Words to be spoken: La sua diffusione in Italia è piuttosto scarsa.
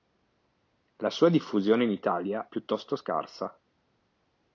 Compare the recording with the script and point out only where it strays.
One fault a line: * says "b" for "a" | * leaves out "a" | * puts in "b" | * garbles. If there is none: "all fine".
* leaves out "è"